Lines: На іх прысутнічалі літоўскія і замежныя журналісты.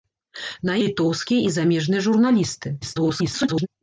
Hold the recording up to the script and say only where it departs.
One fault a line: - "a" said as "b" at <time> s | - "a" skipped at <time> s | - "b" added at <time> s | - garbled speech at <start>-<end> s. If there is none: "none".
- "іх прысутнічалі" skipped at 0.8 s
- garbled speech at 2.8-3.7 s